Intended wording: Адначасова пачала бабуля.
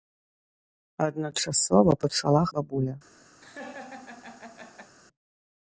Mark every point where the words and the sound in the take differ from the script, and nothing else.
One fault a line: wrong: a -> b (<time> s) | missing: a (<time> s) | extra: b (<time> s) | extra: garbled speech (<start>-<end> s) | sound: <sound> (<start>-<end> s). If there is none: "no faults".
sound: laugh (3.4-4.9 s)